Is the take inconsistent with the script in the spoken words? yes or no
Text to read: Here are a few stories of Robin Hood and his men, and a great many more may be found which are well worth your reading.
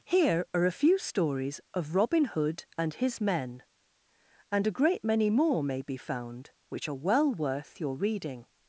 no